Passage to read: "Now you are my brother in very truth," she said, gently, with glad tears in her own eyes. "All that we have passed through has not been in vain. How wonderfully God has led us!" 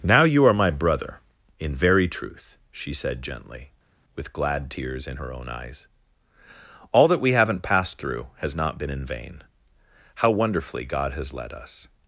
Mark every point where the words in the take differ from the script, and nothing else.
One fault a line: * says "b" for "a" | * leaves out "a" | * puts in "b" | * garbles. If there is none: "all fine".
* says "haven't" for "have"